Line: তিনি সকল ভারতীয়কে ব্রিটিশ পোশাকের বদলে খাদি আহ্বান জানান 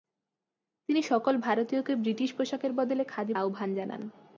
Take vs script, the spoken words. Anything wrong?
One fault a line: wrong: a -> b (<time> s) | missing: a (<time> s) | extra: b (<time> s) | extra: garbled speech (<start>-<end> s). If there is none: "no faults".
no faults